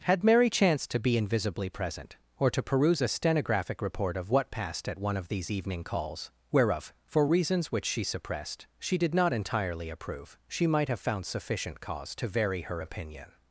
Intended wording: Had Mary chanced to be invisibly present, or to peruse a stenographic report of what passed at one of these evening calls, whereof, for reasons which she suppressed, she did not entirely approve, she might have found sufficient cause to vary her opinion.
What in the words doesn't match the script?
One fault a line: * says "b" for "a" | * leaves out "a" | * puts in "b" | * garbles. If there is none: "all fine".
all fine